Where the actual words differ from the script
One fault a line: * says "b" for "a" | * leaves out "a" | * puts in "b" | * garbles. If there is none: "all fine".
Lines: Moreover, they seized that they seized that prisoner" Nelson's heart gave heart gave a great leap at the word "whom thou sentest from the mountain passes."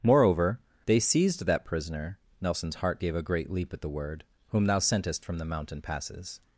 * leaves out "they seized that"
* leaves out "heart gave"